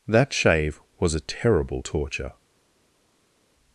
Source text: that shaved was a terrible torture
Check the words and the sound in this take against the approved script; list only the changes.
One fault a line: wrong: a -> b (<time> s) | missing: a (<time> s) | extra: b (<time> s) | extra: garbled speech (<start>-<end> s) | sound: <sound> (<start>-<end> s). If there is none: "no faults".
wrong: shaved -> shave (0.3 s)